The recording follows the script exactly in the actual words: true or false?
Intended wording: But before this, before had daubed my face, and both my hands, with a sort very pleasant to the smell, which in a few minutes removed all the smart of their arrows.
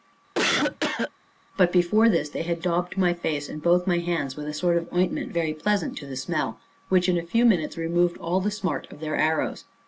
false